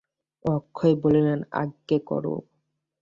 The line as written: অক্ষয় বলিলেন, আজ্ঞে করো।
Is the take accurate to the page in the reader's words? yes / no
yes